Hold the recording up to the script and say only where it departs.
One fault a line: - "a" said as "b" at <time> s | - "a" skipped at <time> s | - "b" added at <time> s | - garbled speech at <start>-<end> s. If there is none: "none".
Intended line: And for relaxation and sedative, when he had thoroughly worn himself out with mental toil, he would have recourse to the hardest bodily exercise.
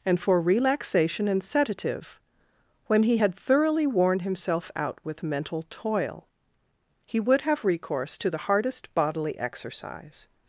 none